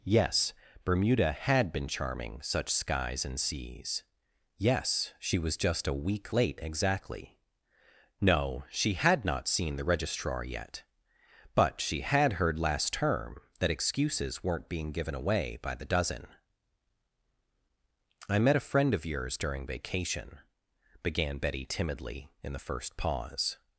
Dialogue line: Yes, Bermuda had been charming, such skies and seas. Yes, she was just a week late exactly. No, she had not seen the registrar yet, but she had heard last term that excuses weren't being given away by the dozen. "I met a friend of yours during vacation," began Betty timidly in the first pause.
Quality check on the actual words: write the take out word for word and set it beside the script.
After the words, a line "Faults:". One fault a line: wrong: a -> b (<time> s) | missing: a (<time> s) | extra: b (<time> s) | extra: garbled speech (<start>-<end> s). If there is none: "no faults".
Yes, Bermuda had been charming, such skies and seas. Yes, she was just a week late exactly. No, she had not seen the registrar yet, but she had heard last term that excuses weren't being given away by the dozen. "I met a friend of yours during vacation," began Betty timidly in the first pause.
Faults:
no faults